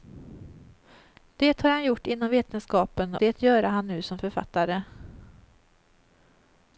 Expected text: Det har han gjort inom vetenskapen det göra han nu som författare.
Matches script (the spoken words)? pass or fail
pass